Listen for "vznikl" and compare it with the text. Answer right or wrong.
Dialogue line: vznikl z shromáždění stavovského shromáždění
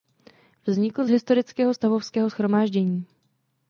right